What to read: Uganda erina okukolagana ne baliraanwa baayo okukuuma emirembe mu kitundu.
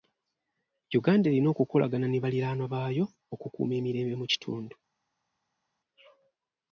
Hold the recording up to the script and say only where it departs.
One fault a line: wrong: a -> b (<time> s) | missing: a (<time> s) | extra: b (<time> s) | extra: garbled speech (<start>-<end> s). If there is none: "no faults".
no faults